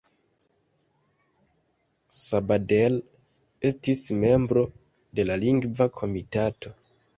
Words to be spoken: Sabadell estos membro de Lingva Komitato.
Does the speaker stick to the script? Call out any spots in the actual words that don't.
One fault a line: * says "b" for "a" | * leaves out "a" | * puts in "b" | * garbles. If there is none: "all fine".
* says "estis" for "estos"
* puts in "la"